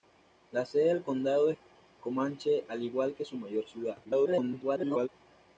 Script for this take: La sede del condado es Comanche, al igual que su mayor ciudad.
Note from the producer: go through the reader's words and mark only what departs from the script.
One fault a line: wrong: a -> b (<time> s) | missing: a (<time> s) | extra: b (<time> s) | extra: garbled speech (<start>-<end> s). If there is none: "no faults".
extra: garbled speech (4.0-5.1 s)